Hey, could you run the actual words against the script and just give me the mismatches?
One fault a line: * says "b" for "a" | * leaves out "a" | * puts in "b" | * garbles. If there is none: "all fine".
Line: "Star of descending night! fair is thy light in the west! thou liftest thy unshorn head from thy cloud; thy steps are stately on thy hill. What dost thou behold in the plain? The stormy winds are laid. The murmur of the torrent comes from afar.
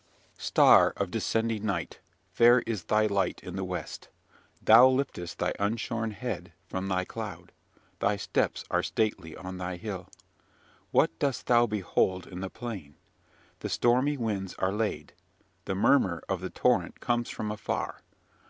all fine